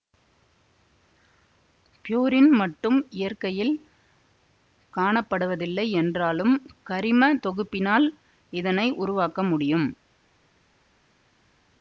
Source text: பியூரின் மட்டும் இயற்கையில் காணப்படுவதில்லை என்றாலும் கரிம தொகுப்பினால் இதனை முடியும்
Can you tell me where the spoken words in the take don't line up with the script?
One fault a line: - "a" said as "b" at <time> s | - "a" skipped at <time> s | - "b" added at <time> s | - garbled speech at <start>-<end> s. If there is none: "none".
- "உருவாக்க" added at 9.0 s